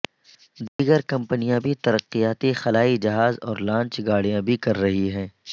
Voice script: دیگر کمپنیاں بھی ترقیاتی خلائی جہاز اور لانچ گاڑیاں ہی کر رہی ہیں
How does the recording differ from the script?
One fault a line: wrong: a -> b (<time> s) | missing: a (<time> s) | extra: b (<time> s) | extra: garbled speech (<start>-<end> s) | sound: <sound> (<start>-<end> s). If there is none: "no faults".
sound: dropout (0.7-0.8 s)
wrong: ہی -> بھی (4.4 s)